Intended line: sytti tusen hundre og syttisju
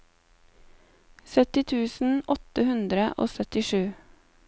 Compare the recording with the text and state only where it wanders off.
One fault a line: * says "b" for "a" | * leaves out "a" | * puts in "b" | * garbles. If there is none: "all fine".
* puts in "åtte"